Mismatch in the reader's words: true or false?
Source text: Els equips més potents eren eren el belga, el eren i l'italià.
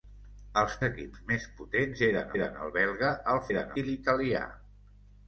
false